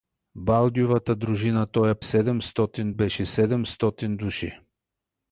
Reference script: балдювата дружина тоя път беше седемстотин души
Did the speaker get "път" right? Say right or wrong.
wrong